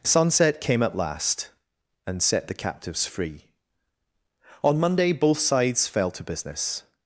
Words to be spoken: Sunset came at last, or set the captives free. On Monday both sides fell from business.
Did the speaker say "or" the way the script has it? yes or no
no